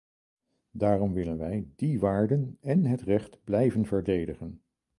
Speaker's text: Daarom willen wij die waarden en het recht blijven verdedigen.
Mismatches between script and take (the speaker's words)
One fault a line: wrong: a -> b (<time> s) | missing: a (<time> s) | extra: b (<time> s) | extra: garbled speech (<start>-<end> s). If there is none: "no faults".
no faults